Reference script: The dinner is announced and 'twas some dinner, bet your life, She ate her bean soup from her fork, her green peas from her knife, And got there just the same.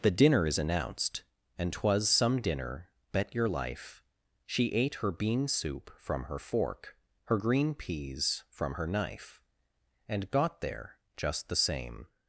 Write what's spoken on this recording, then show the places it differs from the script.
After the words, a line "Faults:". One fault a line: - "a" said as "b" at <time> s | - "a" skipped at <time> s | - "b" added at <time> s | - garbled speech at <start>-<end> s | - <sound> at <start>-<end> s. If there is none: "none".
The dinner is announced and 'twas some dinner, bet your life, She ate her bean soup from her fork, her green peas from her knife, And got there just the same.
Faults:
none